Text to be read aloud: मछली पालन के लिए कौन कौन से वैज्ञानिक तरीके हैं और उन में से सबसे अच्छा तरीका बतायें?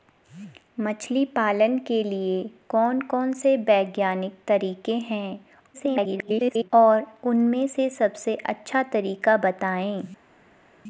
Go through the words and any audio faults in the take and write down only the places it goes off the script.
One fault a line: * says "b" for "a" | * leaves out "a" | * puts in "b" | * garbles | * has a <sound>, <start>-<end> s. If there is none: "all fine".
* garbles